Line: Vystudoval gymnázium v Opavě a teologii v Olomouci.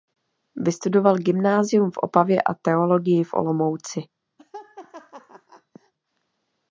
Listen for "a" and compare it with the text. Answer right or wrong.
right